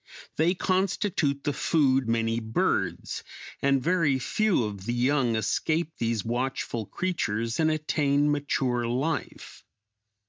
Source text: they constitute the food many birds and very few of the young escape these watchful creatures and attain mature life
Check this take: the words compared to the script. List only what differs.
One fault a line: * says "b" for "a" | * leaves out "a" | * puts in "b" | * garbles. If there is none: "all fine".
all fine